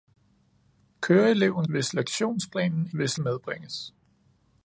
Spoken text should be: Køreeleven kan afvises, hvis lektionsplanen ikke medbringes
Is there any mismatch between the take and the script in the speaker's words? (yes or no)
yes